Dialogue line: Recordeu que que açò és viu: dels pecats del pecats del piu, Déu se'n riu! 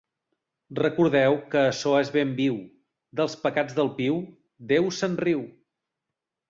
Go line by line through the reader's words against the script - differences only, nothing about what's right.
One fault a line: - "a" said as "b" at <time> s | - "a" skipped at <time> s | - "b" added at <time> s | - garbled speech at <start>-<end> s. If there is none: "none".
- "que" skipped at 1.6 s
- "ben" added at 2.2 s
- "pecats del" skipped at 4.0 s